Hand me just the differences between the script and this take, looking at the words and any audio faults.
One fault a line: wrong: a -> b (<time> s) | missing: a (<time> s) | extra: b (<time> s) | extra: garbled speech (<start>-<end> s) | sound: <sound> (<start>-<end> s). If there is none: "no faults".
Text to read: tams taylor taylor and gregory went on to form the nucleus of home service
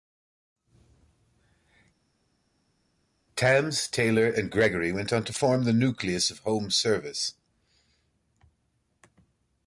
missing: taylor (4.3 s)